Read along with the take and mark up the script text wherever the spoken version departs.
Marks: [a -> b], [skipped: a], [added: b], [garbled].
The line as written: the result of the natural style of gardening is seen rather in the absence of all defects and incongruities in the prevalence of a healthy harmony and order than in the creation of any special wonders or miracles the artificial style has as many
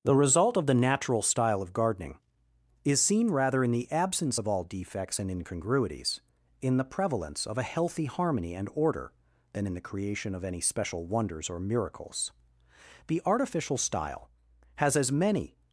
the result of the natural style of gardening is seen rather in the absence of all defects and incongruities in the prevalence of a healthy harmony and order than in the creation of any special wonders or miracles the artificial style has as many